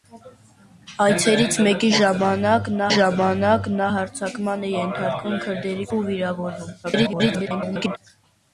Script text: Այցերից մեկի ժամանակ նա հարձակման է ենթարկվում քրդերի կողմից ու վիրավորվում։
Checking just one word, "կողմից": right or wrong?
wrong